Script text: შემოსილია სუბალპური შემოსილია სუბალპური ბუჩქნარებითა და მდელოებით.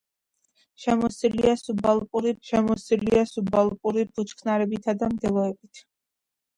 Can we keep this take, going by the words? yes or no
yes